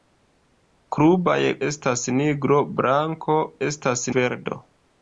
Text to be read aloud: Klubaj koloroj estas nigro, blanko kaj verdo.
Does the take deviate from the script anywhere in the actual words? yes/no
yes